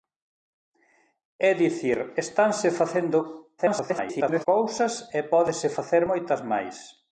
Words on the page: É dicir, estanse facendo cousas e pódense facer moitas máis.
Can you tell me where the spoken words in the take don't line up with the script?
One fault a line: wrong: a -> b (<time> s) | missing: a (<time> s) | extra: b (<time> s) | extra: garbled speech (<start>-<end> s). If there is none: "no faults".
extra: garbled speech (3.6-4.5 s)